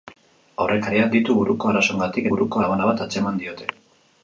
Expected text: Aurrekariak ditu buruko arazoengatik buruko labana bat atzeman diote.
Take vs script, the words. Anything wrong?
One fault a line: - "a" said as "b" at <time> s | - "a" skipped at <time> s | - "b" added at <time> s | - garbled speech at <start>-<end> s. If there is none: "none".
none